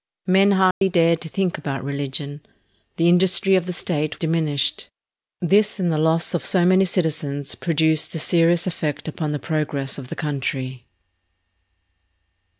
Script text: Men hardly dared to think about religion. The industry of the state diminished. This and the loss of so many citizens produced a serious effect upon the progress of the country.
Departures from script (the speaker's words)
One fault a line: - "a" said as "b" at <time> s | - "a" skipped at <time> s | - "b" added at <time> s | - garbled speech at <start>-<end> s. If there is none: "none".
none